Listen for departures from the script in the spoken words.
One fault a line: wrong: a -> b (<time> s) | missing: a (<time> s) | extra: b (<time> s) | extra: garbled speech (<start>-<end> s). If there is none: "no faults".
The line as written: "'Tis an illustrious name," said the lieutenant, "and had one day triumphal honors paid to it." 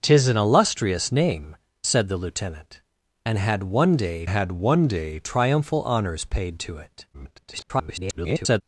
extra: had one day (4.2 s)
extra: garbled speech (7.1-8.6 s)